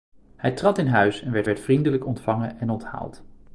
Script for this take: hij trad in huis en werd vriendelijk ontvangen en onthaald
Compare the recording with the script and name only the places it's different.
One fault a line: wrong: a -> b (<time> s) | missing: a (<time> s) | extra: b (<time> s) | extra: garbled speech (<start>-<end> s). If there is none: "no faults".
extra: werd (1.4 s)